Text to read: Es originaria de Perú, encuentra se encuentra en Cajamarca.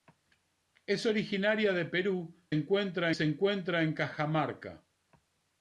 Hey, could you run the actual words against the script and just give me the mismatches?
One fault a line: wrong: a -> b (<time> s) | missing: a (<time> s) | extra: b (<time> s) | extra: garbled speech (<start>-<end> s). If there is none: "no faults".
no faults